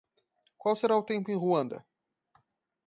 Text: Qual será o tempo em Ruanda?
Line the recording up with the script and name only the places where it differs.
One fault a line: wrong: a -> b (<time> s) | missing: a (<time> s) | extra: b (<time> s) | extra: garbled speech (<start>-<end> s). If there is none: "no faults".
no faults